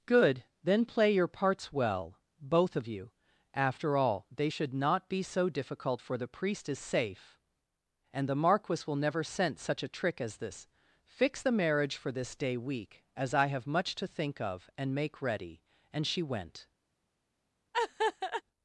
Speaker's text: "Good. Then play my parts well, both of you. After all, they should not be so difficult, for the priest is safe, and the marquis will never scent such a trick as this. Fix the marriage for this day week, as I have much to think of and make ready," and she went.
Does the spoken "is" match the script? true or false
true